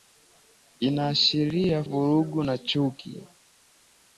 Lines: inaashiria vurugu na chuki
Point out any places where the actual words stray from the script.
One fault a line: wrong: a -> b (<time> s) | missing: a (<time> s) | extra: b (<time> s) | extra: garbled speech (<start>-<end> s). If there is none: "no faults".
no faults